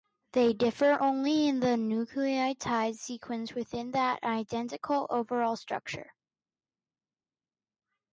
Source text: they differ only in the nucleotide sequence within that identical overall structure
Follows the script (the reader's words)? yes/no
yes